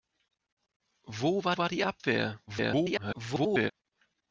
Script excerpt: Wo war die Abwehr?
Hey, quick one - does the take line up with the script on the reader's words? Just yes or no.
no